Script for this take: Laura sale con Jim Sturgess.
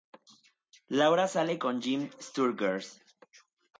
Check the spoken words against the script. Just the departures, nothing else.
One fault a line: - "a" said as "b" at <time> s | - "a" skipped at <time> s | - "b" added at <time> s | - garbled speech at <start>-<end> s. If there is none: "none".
none